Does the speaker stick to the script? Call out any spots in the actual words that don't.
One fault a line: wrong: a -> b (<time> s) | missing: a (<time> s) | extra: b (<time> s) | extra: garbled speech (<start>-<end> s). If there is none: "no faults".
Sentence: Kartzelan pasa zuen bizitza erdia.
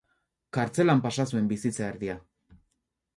no faults